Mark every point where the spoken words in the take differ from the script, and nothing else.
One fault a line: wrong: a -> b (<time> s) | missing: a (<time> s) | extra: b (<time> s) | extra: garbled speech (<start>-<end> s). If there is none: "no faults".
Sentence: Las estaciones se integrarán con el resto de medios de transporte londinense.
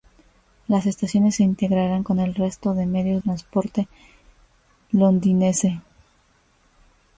missing: de (3.2 s)